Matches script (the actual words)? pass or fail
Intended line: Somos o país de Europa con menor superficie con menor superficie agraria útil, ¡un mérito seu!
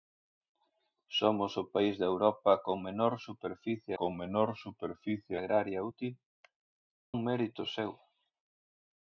pass